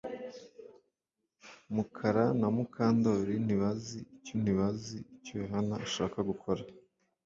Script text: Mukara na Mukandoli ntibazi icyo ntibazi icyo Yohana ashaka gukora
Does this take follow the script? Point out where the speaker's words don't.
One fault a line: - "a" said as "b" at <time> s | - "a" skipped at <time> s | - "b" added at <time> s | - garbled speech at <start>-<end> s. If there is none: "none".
none